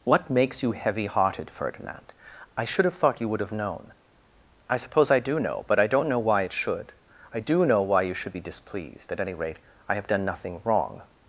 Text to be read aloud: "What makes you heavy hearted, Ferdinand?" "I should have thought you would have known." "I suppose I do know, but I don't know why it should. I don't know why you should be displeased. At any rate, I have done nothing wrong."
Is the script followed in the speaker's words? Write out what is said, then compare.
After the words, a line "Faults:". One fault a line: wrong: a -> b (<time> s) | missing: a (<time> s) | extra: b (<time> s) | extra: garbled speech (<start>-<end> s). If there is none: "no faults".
"What makes you heavy hearted, Ferdinand?" "I should have thought you would have known." "I suppose I do know, but I don't know why it should. I do know why you should be displeased. At any rate, I have done nothing wrong."
Faults:
wrong: don't -> do (7.4 s)